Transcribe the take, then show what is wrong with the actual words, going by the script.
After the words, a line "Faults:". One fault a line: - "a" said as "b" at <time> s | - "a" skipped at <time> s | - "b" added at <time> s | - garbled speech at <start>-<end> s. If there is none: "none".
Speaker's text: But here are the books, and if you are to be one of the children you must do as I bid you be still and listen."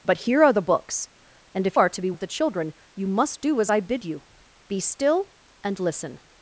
But here are the books, and if are to be of the children you must do as I bid you be still and listen."
Faults:
- "you" skipped at 1.8 s
- "one" skipped at 2.1 s